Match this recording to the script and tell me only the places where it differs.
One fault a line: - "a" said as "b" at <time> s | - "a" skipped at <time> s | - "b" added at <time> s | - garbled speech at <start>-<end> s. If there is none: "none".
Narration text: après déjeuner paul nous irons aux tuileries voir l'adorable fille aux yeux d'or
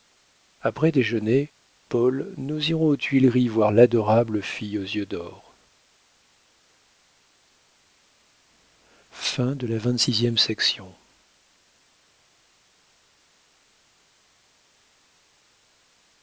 none